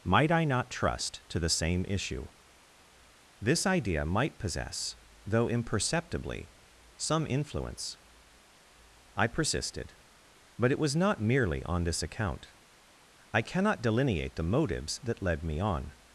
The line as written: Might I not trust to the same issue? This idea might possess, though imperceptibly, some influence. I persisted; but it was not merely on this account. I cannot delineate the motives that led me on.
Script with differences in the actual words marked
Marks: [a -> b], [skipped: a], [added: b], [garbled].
Might I not trust to the same issue? This idea might possess, though imperceptibly, some influence. I persisted; but it was not merely on this account. I cannot delineate the motives that led me on.